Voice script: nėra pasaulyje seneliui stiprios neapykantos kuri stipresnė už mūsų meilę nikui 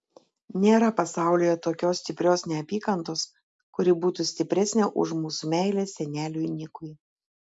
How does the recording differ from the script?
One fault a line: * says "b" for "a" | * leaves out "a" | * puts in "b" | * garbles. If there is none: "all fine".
* says "tokios" for "seneliui"
* puts in "būtų"
* puts in "seneliui"